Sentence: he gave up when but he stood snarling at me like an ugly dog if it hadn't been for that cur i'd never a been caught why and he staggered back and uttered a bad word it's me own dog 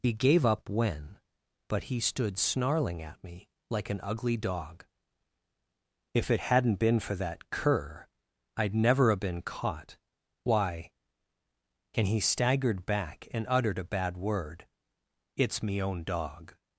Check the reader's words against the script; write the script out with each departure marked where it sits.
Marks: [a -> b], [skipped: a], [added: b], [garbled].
he gave up when but he stood snarling at me like an ugly dog if it hadn't been for that cur i'd never a been caught why and he staggered back and uttered a bad word it's me own dog